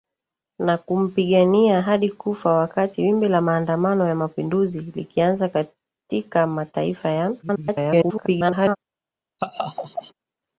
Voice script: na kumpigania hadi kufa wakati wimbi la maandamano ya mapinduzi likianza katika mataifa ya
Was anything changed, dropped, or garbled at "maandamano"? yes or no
no